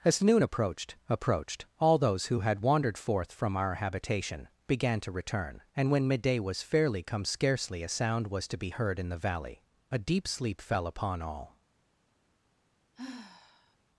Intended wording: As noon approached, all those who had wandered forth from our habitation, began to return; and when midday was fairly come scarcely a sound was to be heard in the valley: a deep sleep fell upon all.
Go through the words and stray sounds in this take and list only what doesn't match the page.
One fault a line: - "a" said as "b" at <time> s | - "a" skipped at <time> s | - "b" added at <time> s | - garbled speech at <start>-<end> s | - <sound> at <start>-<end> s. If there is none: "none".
- "approached" added at 1.1 s
- sigh at 12.9-13.8 s